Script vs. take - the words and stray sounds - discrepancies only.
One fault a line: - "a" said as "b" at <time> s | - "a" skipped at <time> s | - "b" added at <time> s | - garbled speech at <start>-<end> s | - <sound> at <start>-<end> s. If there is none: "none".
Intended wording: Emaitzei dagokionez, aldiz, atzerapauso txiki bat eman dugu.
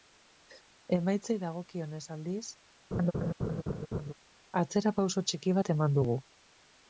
- laugh at 2.9-4.1 s